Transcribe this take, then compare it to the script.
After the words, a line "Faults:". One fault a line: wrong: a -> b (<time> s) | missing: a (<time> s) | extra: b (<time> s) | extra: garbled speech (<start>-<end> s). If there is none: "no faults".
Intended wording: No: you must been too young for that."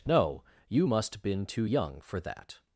No: you must been too young for that."
Faults:
no faults